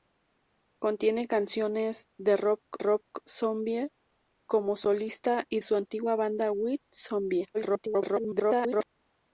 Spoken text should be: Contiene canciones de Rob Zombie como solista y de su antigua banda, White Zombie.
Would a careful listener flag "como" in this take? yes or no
no